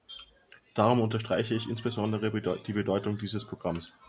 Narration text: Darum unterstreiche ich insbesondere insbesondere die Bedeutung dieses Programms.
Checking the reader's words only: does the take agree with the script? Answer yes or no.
no